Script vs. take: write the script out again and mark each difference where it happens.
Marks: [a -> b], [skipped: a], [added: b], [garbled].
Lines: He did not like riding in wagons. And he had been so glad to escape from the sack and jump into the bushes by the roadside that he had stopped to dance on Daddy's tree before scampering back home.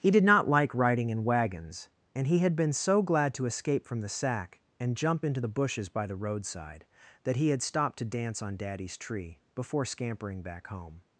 He did not like riding in wagons. And he had been so glad to escape from the sack and jump into the bushes by the roadside that he had stopped to dance on Daddy's tree before scampering back home.